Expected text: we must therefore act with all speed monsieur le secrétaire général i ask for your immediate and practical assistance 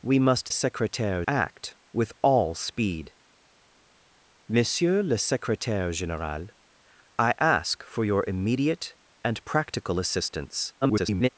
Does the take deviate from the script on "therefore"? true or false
true